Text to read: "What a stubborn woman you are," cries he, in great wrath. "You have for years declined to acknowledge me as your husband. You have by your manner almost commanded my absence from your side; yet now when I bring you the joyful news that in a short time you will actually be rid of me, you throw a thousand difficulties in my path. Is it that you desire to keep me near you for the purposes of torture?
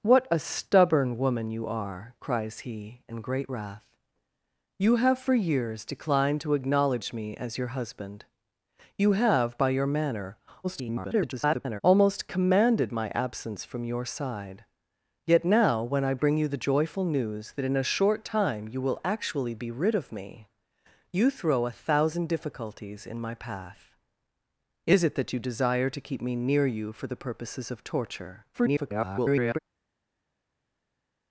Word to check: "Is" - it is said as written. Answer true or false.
true